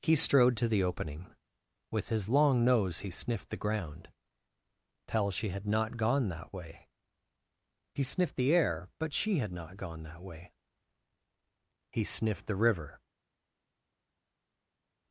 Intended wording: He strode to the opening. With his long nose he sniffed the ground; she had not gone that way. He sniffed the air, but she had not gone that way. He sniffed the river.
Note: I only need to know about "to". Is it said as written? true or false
true